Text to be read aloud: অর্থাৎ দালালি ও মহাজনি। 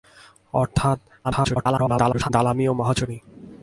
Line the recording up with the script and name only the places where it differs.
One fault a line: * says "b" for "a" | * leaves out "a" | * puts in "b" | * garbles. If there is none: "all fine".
* garbles